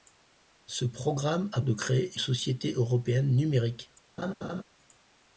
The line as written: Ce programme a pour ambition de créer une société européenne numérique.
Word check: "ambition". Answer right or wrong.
wrong